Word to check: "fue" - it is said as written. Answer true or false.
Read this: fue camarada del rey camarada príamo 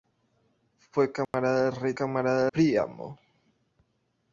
true